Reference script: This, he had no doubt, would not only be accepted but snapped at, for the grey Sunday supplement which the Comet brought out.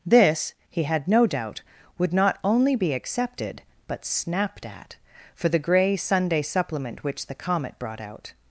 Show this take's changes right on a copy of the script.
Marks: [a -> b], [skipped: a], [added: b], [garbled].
This, he had no doubt, would not only be accepted but snapped at, for the grey Sunday supplement which the Comet brought out.